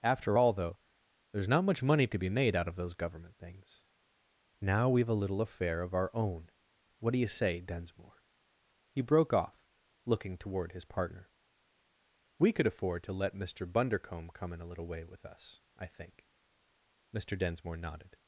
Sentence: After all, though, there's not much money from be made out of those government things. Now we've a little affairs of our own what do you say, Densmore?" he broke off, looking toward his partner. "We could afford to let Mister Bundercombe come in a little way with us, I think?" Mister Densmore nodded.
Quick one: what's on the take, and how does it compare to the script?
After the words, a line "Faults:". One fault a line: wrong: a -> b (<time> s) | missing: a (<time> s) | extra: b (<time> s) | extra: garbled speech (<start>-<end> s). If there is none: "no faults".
After all, though, there's not much money to be made out of those government things. Now we've a little affair of our own what do you say, Densmore?" he broke off, looking toward his partner. "We could afford to let Mister Bundercombe come in a little way with us, I think?" Mister Densmore nodded.
Faults:
wrong: from -> to (2.1 s)
wrong: affairs -> affair (5.4 s)